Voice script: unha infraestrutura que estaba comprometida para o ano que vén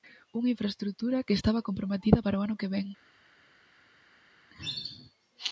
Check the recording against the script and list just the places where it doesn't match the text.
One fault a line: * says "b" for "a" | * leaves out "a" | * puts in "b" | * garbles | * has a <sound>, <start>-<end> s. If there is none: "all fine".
all fine